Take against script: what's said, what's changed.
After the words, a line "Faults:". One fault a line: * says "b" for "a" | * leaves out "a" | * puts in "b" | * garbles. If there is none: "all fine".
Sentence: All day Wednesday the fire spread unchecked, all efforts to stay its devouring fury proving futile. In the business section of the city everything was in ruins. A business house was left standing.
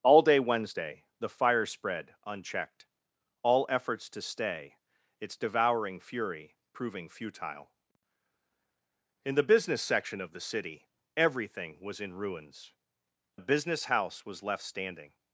All day Wednesday the fire spread unchecked, all efforts to stay its devouring fury proving futile. In the business section of the city everything was in ruins. A business house was left standing.
Faults:
all fine